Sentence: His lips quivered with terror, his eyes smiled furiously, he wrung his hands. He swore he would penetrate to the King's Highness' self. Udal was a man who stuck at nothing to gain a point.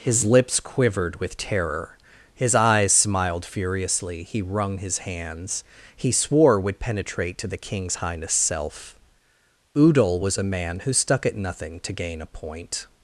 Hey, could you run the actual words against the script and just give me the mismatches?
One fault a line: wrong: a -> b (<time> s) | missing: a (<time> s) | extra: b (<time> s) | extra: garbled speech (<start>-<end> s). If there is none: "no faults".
missing: he (6.6 s)